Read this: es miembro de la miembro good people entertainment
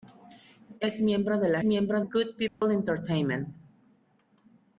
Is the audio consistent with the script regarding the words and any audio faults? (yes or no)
no